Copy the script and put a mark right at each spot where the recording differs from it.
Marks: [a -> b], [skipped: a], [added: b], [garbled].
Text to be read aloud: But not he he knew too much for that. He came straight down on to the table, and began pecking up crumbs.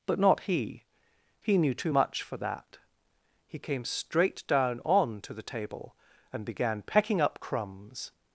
But not he he knew too much for that. He came straight down on to the table, and began pecking up crumbs.